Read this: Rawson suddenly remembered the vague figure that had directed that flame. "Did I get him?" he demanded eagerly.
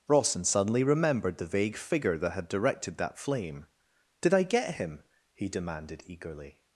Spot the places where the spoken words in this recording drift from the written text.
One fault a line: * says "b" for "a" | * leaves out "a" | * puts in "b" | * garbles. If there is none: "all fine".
all fine